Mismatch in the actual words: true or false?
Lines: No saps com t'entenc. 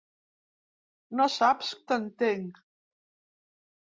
true